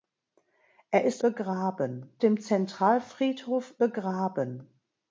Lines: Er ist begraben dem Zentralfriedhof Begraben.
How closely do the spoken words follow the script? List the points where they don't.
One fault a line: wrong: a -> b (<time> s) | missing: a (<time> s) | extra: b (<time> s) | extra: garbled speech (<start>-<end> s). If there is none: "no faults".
no faults